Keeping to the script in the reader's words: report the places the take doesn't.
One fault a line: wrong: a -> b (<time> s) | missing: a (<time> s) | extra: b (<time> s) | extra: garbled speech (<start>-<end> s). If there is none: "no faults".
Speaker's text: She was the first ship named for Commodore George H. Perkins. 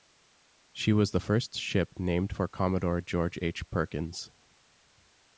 no faults